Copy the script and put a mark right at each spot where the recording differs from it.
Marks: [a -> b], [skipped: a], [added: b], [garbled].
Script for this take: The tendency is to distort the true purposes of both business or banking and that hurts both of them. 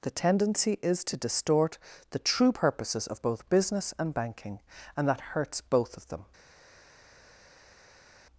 The tendency is to distort the true purposes of both business [or -> and] banking and that hurts both of them.